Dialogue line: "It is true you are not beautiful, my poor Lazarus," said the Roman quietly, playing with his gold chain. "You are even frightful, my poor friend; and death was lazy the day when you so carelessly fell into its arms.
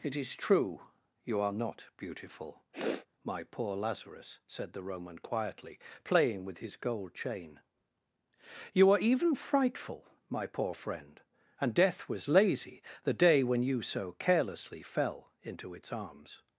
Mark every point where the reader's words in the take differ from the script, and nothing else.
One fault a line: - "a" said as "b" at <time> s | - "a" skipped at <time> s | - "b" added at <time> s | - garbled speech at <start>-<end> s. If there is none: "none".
none